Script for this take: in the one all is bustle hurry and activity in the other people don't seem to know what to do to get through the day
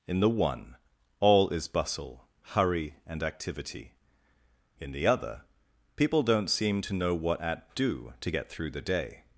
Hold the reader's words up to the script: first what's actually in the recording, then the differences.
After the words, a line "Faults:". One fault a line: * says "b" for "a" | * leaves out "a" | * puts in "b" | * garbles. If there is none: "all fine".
in the one all is bustle hurry and activity in the other people don't seem to know what at do to get through the day
Faults:
* says "at" for "to"